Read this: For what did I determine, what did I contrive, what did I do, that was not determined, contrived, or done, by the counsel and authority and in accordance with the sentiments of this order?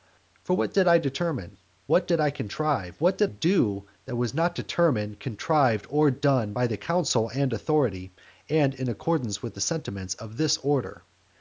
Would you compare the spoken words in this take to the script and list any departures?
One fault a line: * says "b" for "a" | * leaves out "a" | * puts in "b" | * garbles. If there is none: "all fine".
* leaves out "I"